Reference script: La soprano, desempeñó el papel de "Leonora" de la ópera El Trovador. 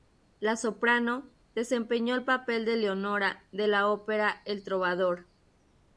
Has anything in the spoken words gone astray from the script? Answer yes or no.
no